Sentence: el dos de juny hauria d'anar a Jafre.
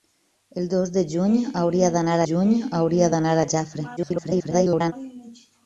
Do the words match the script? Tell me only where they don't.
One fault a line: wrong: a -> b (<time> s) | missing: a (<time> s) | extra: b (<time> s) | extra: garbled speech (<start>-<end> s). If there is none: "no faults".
extra: juny hauria d'anar (2.3 s)
extra: garbled speech (4.0-4.9 s)